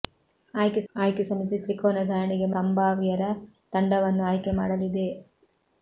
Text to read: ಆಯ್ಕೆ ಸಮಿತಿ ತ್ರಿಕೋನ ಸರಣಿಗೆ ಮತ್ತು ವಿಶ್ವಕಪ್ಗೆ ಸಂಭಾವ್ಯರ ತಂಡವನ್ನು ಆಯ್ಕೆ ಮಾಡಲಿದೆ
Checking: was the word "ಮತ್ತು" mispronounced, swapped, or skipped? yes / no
yes